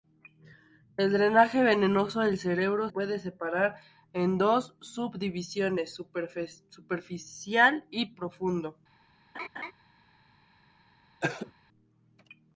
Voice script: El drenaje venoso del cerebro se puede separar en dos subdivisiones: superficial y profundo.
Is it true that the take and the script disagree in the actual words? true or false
true